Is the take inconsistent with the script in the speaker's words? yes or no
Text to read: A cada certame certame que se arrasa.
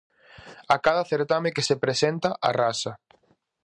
yes